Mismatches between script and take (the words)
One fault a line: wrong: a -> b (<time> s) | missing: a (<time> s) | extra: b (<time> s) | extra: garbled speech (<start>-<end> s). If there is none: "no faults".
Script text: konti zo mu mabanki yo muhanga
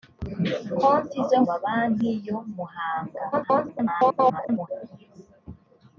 missing: mu (1.4 s)
extra: garbled speech (3.3-4.7 s)